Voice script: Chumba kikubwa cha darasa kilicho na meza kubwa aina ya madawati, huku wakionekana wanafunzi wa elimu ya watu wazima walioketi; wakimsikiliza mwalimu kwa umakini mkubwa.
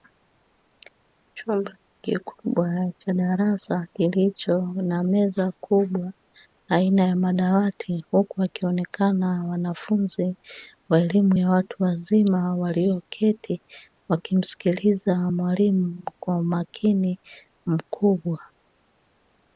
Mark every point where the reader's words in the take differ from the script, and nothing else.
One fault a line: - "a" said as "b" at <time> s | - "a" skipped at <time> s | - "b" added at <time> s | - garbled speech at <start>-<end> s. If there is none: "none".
none